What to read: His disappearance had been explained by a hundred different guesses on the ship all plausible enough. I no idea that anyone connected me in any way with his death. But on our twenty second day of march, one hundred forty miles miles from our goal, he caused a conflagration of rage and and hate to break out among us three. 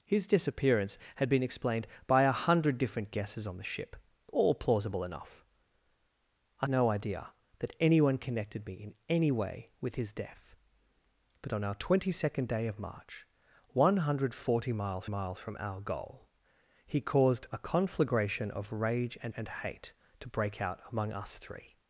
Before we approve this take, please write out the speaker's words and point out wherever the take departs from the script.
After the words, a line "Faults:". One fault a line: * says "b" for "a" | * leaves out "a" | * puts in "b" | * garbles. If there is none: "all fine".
His disappearance had been explained by a hundred different guesses on the ship all plausible enough. I no idea that anyone connected me in any way with his death. But on our twenty second day of march, one hundred forty miles miles from our goal, he caused a conflagration of rage and and hate to break out among us three.
Faults:
all fine